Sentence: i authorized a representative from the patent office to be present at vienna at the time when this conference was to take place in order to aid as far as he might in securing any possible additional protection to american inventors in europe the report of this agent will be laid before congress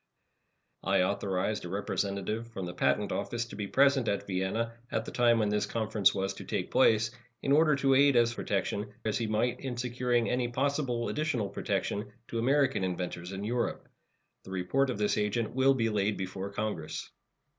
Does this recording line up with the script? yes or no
no